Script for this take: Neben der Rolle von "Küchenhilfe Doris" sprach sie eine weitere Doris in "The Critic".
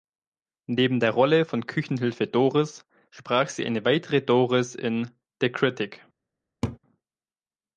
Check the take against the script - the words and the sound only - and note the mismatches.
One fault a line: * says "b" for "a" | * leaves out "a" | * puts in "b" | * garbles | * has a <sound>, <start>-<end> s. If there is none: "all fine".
* has a laugh, 6.6-6.8 s